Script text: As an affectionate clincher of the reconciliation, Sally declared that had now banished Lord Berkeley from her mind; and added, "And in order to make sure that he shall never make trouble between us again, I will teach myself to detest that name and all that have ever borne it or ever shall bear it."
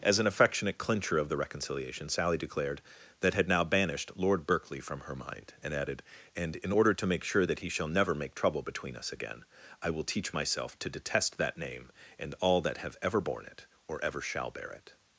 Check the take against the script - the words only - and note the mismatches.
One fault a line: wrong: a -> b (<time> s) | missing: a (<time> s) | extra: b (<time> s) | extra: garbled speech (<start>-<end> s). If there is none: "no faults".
no faults